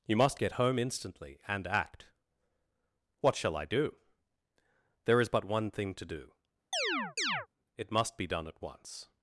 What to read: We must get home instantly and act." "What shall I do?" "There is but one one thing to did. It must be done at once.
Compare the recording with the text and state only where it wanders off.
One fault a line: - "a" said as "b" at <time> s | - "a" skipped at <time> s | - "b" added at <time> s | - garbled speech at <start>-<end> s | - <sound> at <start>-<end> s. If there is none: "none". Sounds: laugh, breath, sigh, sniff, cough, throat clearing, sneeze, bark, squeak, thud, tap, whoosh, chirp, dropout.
- "We" said as "You" at 0.1 s
- "one" skipped at 5.7 s
- "did" said as "do" at 6.0 s
- chirp at 6.7-7.5 s